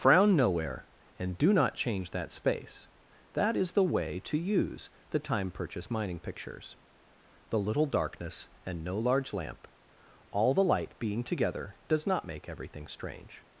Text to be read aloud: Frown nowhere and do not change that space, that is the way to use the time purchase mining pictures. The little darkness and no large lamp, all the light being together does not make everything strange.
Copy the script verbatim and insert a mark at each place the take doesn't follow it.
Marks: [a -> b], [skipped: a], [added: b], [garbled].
Frown nowhere and do not change that space, that is the way to use the time purchase mining pictures. The little darkness and no large lamp, all the light being together does not make everything strange.